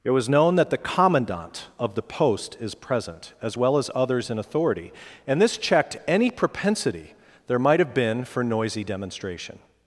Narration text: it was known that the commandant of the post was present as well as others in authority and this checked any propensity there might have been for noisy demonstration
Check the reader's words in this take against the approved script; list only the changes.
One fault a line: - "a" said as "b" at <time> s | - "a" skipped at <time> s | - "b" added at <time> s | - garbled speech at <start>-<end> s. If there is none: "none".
- "was" said as "is" at 2.6 s